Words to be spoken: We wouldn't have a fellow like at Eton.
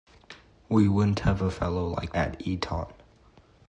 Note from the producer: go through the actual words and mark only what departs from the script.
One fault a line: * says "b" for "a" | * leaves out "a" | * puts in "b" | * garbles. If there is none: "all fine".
all fine